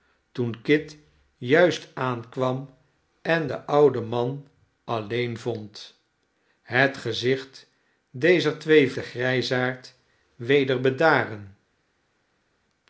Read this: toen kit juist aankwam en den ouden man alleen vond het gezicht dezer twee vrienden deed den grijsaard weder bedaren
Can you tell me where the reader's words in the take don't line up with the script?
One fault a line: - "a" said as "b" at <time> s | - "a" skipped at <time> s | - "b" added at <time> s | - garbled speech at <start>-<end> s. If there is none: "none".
- "vrienden deed" skipped at 8.9 s